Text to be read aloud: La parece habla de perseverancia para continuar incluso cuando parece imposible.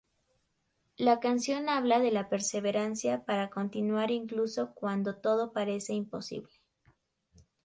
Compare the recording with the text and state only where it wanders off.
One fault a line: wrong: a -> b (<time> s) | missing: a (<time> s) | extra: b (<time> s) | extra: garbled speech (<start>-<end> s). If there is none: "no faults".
wrong: parece -> canción (1.2 s)
extra: la (2.1 s)
extra: todo (5.2 s)